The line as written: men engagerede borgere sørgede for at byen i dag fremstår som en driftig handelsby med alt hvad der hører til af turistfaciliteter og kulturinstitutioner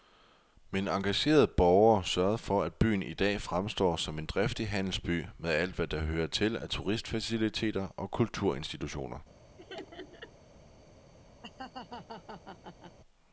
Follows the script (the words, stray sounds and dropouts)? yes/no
no